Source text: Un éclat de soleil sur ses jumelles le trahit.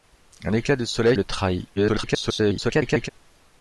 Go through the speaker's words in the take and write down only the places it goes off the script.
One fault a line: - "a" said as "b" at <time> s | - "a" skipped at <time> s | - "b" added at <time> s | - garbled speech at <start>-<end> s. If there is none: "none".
- "sur ses jumelles" skipped at 1.1 s
- garbled speech at 1.8-3.1 s